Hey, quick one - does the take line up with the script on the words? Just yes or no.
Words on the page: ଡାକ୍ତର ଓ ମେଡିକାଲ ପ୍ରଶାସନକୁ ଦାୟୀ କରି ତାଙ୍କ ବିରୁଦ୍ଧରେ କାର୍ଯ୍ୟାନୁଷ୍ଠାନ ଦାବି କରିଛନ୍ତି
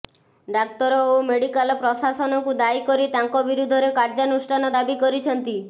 yes